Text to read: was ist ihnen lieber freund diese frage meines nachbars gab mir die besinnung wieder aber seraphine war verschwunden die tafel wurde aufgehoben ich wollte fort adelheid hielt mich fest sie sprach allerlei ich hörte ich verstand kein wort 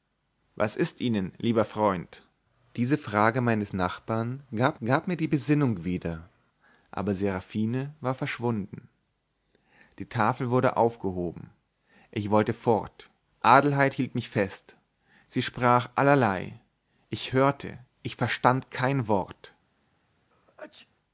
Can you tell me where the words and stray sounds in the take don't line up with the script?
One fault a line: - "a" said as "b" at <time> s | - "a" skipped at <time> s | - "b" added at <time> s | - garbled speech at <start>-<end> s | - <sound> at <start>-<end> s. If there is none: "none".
- "gab" added at 4.8 s
- sneeze at 20.3-20.9 s